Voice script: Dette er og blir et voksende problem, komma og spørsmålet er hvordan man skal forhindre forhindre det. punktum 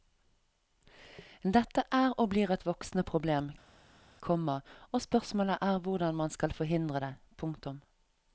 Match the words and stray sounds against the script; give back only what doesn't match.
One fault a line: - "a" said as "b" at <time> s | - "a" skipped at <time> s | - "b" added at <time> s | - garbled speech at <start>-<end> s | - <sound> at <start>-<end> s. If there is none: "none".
- "forhindre" skipped at 7.0 s